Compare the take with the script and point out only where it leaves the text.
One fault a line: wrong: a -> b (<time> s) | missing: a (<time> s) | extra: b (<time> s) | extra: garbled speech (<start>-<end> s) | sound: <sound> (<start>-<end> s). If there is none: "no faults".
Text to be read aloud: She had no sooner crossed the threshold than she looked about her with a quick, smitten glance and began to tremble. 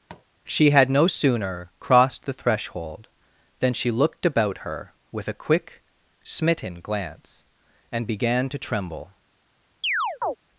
sound: tap (0.1-0.3 s)
sound: chirp (9.8-10.4 s)